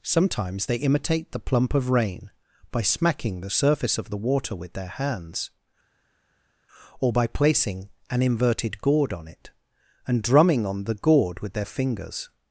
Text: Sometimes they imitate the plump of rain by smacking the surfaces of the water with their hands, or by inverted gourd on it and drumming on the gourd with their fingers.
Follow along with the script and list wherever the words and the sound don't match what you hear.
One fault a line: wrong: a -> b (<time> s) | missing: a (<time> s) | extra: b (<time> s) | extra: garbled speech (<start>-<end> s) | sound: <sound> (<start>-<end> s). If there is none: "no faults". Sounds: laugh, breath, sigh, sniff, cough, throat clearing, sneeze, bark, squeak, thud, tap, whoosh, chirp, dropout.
wrong: surfaces -> surface (3.5 s)
extra: placing an (7.3 s)